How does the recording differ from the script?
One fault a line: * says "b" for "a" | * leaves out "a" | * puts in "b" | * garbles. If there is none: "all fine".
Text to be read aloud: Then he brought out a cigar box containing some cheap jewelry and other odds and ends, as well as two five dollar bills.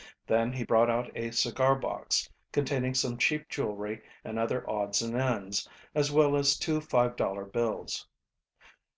all fine